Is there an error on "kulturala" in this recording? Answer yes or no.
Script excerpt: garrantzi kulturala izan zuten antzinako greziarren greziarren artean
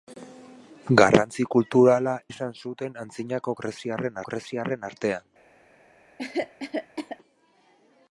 no